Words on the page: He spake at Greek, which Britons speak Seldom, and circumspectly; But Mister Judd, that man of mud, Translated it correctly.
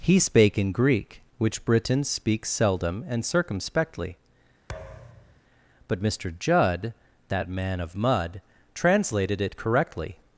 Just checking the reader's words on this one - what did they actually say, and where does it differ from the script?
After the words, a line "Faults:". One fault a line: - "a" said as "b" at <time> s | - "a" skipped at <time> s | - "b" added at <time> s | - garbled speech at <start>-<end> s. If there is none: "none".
He spake in Greek, which Britons speak Seldom, and circumspectly; But Mister Judd, that man of mud, Translated it correctly.
Faults:
- "at" said as "in" at 0.6 s